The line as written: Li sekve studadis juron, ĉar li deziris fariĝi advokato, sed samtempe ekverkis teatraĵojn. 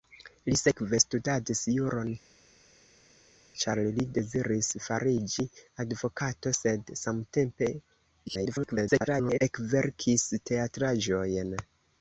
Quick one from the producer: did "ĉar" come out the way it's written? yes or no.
yes